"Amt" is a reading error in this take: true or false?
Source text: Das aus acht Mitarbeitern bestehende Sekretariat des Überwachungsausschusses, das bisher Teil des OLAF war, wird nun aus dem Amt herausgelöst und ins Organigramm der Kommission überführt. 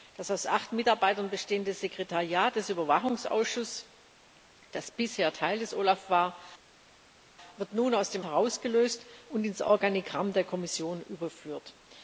true